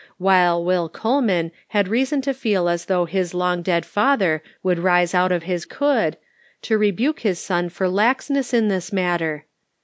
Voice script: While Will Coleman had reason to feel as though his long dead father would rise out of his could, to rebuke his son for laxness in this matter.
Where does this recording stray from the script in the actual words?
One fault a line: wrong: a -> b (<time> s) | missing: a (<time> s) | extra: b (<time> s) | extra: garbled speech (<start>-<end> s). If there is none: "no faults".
no faults